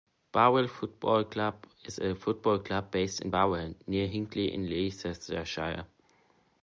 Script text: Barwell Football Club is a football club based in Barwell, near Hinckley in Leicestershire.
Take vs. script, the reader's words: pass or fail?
pass